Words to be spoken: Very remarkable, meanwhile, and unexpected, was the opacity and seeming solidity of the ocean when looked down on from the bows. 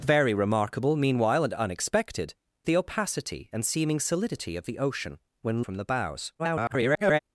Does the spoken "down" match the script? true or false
false